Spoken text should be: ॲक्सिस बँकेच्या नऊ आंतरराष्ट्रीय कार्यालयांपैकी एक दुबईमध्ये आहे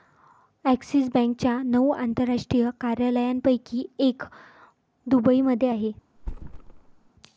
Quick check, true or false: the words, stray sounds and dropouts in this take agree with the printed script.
false